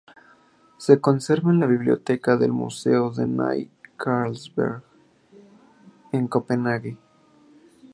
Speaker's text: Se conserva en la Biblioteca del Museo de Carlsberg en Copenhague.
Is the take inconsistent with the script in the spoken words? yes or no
yes